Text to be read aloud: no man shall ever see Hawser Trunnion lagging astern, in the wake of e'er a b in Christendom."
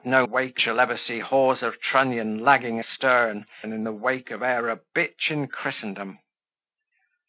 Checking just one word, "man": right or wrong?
wrong